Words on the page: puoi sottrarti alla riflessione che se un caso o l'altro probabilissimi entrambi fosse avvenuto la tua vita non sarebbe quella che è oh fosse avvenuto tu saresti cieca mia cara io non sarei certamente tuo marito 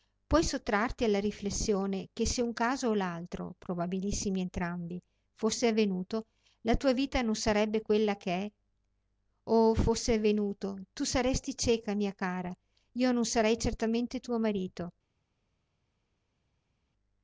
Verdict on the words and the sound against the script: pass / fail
pass